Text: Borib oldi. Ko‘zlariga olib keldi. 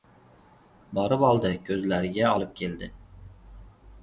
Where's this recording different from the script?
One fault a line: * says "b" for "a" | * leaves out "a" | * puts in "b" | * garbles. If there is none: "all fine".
all fine